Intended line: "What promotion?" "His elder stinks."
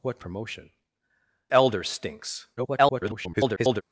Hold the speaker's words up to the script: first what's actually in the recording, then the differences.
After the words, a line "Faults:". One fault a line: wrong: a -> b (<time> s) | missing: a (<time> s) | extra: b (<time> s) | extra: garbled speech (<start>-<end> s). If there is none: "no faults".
"What promotion?" "Elder stinks." [garbled]
Faults:
missing: His (0.7 s)
extra: garbled speech (2.6-3.8 s)